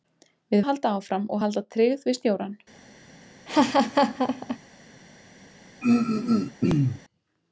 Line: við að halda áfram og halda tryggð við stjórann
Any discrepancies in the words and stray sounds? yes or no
yes